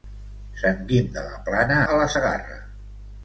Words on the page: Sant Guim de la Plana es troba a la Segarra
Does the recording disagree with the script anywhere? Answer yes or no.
yes